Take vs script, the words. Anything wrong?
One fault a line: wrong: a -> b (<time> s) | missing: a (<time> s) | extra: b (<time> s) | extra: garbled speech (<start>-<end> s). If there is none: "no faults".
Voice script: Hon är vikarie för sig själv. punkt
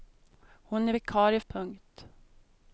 missing: för sig själv (1.4 s)